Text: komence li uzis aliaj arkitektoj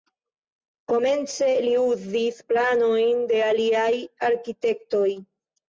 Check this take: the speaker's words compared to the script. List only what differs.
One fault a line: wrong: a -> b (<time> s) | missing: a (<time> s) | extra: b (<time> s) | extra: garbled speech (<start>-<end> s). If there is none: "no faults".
extra: planojn de (2.5 s)